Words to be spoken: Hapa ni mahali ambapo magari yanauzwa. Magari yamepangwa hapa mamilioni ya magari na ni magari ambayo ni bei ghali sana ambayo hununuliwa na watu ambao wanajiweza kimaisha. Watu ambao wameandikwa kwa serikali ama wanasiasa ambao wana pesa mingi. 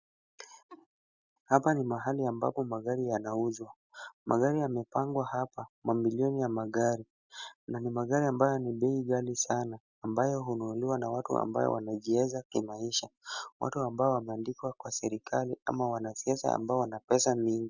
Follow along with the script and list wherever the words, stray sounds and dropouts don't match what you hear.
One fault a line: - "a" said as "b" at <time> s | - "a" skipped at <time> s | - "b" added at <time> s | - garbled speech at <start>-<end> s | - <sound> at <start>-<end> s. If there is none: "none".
- laugh at 0.7-0.9 s